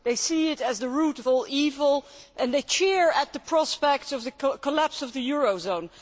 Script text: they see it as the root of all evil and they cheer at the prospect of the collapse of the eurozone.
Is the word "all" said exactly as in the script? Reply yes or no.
yes